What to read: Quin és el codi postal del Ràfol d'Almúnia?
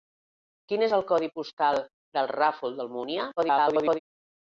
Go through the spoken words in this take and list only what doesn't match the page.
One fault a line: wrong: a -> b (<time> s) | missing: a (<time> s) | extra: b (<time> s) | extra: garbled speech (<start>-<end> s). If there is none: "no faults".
extra: garbled speech (3.4-4.0 s)